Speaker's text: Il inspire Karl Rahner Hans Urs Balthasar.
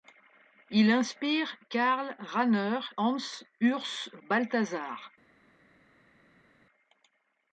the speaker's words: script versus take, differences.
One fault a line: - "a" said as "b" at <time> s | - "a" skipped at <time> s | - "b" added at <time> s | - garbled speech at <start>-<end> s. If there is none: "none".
none